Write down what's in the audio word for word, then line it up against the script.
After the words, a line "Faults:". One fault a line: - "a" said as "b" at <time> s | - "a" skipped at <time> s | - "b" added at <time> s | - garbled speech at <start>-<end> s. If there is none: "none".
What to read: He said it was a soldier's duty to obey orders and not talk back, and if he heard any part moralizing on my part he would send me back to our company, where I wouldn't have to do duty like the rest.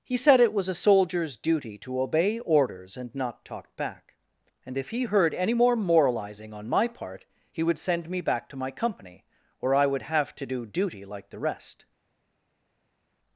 He said it was a soldier's duty to obey orders and not talk back, and if he heard any more moralizing on my part he would send me back to my company, where I would have to do duty like the rest.
Faults:
- "part" said as "more" at 5.5 s
- "our" said as "my" at 8.6 s
- "wouldn't" said as "would" at 9.9 s